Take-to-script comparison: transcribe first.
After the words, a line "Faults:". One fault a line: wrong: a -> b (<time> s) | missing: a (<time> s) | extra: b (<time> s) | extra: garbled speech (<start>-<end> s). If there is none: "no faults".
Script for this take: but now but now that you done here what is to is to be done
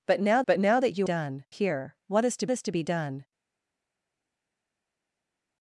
but now but now that you done here what is to is to be done
Faults:
no faults